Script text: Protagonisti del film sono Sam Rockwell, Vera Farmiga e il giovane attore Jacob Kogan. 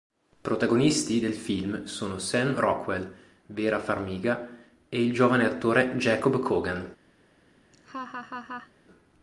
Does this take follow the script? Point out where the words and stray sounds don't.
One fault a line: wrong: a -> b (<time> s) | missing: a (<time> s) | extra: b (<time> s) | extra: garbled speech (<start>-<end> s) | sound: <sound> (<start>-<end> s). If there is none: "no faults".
sound: laugh (7.7-8.7 s)